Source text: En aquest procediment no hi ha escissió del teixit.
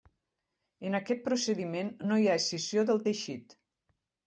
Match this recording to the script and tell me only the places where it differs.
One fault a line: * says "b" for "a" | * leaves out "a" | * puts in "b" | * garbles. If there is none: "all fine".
all fine